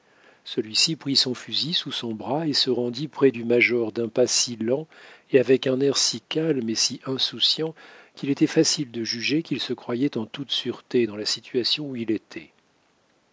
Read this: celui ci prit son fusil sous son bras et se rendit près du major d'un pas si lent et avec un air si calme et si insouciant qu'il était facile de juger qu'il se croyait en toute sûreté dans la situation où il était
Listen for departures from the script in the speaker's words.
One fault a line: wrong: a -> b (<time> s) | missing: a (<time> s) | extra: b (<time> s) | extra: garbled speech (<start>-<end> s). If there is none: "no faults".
no faults